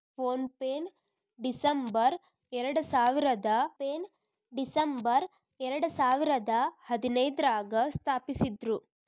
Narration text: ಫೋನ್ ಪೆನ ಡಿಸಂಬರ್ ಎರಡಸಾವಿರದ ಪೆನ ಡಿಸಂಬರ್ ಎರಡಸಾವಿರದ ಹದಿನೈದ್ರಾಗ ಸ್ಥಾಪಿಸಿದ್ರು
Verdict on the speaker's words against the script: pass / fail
pass